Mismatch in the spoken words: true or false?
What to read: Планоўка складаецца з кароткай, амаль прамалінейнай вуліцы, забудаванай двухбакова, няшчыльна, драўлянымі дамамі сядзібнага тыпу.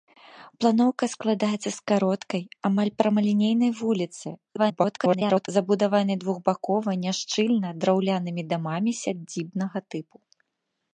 true